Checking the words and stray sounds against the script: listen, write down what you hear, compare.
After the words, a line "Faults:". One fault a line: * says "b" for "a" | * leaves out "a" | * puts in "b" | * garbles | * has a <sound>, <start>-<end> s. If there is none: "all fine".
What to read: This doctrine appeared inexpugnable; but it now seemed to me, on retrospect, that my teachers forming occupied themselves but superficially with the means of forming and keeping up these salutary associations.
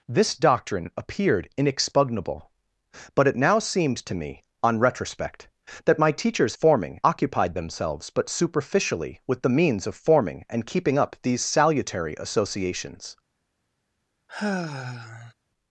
This doctrine appeared inexpugnable; but it now seemed to me, on retrospect, that my teachers forming occupied themselves but superficially with the means of forming and keeping up these salutary associations.
Faults:
* has a sigh, 14.3-15.3 s